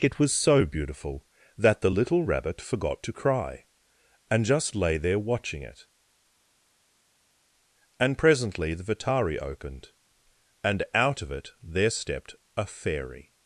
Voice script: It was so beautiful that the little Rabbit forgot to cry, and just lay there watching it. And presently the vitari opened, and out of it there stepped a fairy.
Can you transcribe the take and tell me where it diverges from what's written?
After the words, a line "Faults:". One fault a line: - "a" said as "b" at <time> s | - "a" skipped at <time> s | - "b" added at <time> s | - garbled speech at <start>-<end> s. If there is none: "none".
It was so beautiful that the little Rabbit forgot to cry, and just lay there watching it. And presently the vitari opened, and out of it there stepped a fairy.
Faults:
none